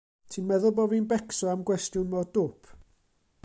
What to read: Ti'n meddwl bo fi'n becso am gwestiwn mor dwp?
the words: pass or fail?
pass